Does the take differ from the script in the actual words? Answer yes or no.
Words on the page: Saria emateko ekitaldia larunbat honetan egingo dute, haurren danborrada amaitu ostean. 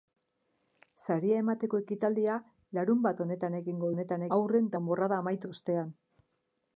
yes